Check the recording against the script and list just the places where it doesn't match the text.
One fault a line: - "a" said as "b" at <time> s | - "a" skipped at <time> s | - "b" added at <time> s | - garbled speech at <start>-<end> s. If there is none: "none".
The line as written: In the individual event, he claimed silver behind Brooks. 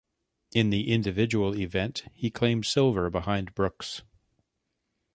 none